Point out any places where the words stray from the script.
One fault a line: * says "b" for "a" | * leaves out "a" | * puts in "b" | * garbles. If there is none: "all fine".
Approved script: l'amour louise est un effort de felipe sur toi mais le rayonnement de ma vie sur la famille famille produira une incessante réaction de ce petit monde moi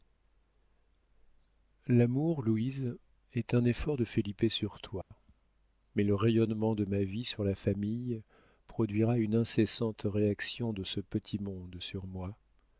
* leaves out "famille"
* puts in "sur"